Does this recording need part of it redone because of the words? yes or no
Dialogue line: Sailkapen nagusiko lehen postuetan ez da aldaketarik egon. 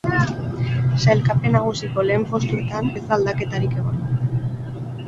no